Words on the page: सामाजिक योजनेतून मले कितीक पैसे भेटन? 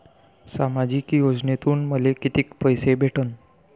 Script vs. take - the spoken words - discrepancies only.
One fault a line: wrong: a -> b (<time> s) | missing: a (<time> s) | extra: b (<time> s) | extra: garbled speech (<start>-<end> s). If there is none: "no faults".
no faults